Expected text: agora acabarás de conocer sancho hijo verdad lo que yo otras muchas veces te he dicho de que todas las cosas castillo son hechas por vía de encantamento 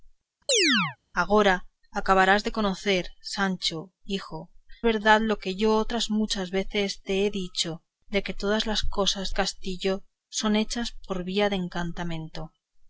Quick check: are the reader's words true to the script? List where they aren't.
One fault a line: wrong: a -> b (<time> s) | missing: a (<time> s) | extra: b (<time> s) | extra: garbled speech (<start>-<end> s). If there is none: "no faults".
no faults